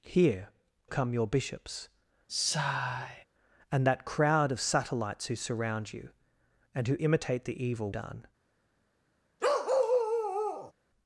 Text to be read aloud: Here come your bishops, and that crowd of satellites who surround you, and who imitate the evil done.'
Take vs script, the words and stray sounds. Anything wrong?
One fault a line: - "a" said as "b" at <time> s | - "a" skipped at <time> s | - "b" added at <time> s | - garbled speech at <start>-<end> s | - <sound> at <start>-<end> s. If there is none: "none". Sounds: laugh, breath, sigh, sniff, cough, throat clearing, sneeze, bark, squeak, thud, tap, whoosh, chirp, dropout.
- sigh at 2.3-3.2 s
- bark at 9.4-10.7 s